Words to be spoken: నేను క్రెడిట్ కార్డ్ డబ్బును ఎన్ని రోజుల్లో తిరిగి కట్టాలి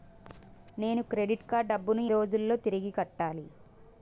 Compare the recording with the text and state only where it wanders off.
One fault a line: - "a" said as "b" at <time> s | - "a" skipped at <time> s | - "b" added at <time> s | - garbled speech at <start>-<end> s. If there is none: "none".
- "ఎన్ని" skipped at 2.0 s